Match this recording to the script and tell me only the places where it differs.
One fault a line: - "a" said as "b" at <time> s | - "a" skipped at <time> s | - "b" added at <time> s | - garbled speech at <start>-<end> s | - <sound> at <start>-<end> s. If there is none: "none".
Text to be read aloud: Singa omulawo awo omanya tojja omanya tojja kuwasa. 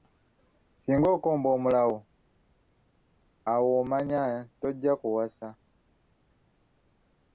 - "okomba" added at 1.1 s
- "omanya tojja" skipped at 4.9 s